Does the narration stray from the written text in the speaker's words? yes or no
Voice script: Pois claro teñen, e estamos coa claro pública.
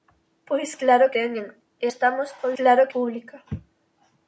no